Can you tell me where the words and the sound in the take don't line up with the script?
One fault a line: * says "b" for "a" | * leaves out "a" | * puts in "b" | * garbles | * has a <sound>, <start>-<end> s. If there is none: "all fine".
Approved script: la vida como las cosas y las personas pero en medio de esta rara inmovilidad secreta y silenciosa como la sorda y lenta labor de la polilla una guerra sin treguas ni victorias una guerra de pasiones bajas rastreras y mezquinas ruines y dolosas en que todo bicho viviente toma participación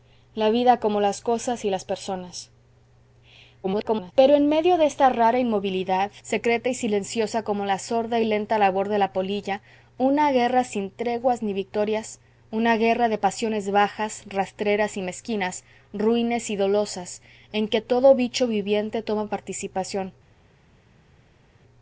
* garbles